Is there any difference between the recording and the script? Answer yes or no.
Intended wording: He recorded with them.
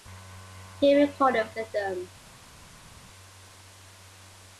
no